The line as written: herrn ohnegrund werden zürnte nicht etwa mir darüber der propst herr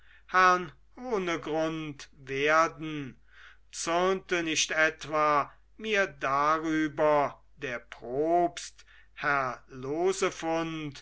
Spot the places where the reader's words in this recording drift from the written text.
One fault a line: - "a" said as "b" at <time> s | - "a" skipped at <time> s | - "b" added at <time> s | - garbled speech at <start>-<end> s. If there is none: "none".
none